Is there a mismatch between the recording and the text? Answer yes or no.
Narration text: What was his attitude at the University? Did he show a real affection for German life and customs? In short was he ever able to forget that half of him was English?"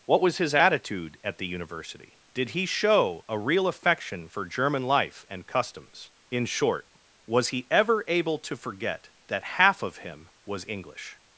no